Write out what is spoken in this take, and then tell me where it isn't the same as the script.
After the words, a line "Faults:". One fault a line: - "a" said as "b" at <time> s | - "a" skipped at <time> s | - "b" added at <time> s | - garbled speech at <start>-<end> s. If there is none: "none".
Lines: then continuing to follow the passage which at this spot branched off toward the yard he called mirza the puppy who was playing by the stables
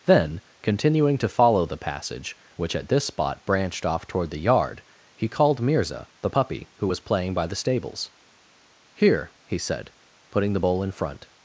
then continuing to follow the passage which at this spot branched off toward the yard he called mirza the puppy who was playing by the stables here he said putting the bowl in front
Faults:
- "here he said putting the bowl in front" added at 8.9 s